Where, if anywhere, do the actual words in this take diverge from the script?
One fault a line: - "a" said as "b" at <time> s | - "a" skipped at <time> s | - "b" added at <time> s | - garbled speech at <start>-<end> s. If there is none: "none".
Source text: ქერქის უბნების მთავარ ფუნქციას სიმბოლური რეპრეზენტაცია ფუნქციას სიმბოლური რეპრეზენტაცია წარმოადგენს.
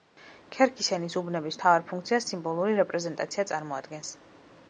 - "ენის" added at 0.9 s
- "ფუნქციას სიმბოლური რეპრეზენტაცია" skipped at 3.5 s